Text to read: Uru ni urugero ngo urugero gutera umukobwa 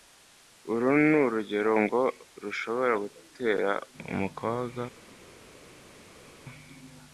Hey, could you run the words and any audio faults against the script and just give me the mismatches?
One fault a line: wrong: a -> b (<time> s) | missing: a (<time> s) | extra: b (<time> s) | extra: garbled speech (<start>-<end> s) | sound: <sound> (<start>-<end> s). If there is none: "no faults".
wrong: urugero -> rushobora (2.4 s)